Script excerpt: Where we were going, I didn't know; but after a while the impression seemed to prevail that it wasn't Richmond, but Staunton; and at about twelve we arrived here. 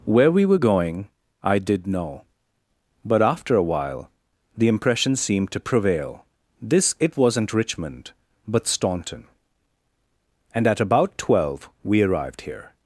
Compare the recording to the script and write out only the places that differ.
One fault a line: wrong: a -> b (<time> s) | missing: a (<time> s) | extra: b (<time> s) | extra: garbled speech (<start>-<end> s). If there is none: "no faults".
wrong: didn't -> did (1.6 s)
wrong: that -> this (6.6 s)